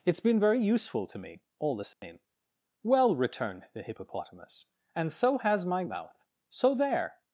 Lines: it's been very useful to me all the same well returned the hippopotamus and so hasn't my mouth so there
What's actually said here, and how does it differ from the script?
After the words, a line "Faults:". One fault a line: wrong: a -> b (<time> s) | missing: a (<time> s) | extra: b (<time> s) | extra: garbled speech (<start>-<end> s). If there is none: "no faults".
it's been very useful to me all the same well returned the hippopotamus and so has my mouth so there
Faults:
wrong: hasn't -> has (5.4 s)